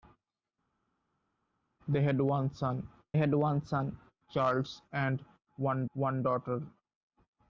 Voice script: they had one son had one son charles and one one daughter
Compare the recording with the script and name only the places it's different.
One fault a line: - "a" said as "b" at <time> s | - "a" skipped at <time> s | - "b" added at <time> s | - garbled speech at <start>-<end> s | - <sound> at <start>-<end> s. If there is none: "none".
none